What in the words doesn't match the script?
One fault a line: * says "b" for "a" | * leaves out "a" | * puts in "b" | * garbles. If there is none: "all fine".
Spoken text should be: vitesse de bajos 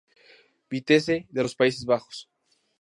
* puts in "los países"